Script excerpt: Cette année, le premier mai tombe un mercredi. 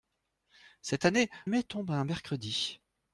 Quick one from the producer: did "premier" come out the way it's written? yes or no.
no